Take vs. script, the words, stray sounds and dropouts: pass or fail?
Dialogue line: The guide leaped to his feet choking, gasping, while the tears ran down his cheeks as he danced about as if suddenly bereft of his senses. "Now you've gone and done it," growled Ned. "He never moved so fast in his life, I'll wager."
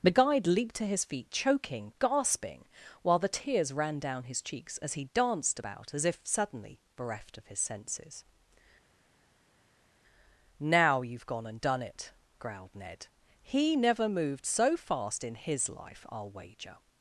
pass